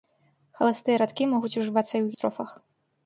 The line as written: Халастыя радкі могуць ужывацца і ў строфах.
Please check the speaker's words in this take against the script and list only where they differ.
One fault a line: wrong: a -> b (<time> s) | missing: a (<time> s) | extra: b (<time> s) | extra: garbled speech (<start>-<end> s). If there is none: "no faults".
no faults